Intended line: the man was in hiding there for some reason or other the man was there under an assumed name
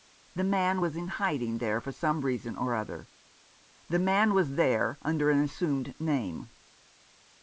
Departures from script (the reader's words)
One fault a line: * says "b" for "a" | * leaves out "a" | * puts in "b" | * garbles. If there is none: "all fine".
all fine